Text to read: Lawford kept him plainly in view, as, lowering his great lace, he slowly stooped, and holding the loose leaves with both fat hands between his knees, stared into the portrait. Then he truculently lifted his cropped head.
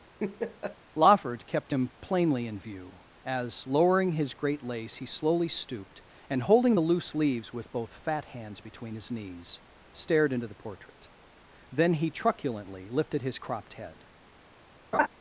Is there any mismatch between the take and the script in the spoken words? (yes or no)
no